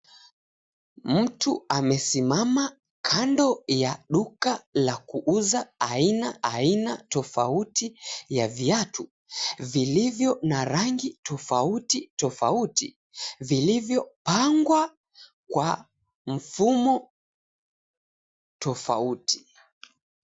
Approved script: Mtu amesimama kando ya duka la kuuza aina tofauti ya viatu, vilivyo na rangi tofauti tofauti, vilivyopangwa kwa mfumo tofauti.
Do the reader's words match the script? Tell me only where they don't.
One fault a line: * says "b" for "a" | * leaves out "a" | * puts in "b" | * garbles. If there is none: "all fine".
* puts in "aina"